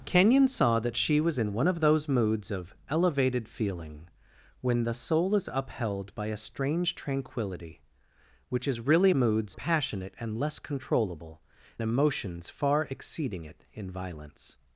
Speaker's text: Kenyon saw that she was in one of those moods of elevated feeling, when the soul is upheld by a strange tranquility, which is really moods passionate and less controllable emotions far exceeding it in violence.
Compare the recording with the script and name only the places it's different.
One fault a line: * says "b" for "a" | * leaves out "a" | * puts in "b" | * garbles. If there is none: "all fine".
all fine